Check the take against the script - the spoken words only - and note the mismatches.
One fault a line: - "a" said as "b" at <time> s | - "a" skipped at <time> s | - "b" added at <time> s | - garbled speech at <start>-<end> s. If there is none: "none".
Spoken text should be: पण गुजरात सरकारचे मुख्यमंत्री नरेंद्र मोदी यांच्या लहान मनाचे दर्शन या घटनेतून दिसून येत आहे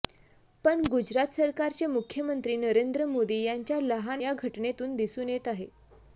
- "मनाचे दर्शन" skipped at 4.2 s